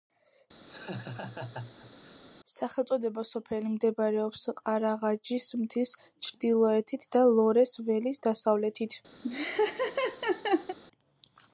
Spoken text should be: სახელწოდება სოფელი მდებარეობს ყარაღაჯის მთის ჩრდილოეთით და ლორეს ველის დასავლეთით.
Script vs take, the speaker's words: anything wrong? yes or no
no